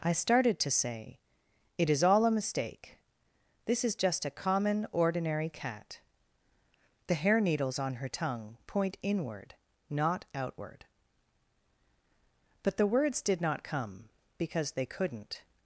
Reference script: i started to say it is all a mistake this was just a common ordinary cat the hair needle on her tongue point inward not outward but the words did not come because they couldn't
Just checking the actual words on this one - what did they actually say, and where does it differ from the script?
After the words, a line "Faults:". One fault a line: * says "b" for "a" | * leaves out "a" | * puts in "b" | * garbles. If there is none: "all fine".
i started to say it is all a mistake this is just a common ordinary cat the hair needles on her tongue point inward not outward but the words did not come because they couldn't
Faults:
* says "is" for "was"
* says "needles" for "needle"